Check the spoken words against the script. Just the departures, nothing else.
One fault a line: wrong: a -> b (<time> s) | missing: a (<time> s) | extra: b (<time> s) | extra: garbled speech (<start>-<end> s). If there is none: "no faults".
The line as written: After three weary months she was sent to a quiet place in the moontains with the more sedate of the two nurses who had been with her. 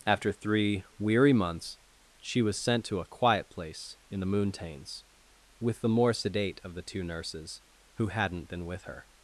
wrong: had -> hadn't (8.1 s)